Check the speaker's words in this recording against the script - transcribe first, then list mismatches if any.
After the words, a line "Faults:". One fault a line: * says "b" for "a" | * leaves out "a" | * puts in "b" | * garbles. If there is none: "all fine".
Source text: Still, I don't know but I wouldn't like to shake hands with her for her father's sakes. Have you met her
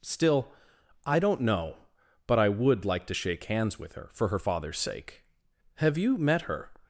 Still, I don't know but I would like to shake hands with her for her father's sake. Have you met her
Faults:
* says "would" for "wouldn't"
* says "sake" for "sakes"